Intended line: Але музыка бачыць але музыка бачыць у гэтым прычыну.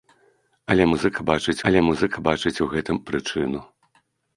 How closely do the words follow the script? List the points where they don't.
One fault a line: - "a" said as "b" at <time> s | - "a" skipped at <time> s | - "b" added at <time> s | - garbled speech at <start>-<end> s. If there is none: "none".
none